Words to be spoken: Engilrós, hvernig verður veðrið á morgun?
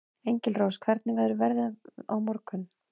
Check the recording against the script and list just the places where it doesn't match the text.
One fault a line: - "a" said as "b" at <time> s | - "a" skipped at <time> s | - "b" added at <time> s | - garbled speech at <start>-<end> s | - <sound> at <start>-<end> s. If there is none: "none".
none